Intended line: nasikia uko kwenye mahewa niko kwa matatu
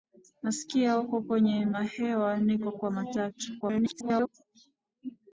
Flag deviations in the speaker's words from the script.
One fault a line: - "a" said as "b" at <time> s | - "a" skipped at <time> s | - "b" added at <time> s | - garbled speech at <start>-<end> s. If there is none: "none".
- garbled speech at 3.6-4.3 s